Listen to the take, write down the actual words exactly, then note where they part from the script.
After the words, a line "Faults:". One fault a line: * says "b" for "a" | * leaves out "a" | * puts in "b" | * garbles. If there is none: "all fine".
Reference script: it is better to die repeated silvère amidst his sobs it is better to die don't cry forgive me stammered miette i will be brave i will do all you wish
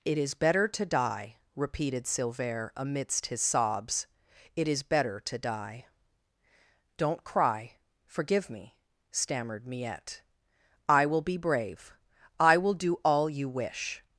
it is better to die repeated silvère amidst his sobs it is better to die don't cry forgive me stammered miette i will be brave i will do all you wish
Faults:
all fine